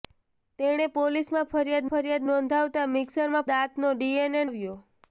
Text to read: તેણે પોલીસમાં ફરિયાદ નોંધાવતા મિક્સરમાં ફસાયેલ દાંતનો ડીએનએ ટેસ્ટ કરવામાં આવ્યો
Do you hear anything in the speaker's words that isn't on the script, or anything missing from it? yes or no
yes